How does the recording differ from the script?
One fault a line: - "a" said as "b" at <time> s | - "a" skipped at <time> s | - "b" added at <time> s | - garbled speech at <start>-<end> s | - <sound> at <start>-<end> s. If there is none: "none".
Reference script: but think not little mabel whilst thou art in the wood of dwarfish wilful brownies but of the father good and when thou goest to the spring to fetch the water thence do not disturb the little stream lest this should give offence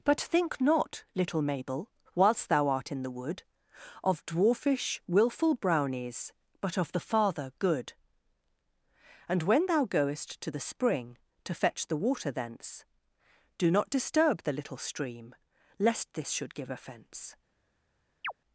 - chirp at 18.2-18.3 s